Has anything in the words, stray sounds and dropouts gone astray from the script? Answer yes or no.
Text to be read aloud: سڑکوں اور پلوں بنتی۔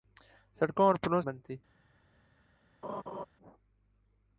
yes